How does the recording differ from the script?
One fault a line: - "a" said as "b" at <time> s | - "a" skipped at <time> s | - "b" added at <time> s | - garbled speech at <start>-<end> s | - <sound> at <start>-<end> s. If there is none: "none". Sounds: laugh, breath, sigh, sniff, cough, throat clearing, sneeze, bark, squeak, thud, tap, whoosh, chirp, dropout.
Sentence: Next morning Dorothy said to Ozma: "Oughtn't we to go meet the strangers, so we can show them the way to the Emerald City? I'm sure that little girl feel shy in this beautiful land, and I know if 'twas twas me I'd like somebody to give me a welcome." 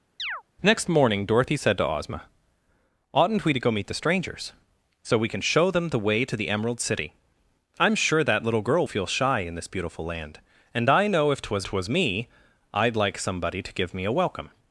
- chirp at 0.2-0.4 s